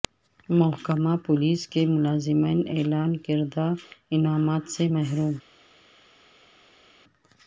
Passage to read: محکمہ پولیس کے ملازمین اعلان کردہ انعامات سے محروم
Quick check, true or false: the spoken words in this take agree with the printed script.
true